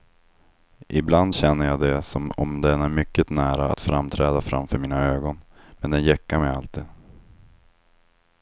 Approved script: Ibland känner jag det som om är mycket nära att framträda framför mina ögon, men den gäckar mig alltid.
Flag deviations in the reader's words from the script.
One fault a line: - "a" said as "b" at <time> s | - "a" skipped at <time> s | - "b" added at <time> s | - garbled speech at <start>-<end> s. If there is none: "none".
- "den" added at 2.6 s